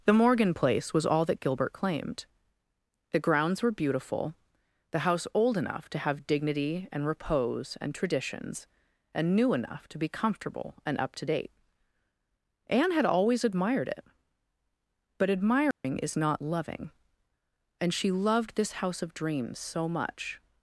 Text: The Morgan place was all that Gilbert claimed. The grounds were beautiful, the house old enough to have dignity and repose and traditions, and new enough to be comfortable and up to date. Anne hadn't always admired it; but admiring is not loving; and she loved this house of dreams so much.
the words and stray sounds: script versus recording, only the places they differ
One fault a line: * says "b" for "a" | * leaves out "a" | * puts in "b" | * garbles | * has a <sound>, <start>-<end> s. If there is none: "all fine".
* says "had" for "hadn't"
* has a dropout, 15.7-15.8 s